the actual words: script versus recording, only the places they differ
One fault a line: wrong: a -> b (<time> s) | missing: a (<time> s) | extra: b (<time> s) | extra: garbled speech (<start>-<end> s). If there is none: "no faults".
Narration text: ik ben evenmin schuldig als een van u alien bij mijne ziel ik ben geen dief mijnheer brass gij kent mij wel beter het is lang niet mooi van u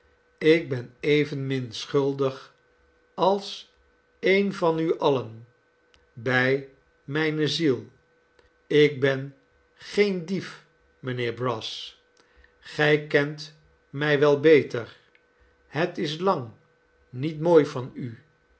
no faults